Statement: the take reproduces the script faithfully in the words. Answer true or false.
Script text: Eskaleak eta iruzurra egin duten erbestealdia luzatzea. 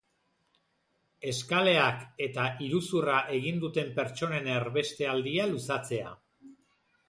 false